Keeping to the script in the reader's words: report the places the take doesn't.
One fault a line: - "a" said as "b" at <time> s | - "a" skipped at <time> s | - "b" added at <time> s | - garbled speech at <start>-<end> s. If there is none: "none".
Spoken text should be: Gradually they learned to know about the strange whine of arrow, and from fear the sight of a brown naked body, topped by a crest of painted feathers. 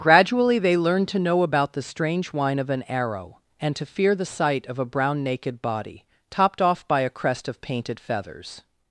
- "an" added at 2.7 s
- "from" said as "to" at 3.8 s
- "off" added at 6.6 s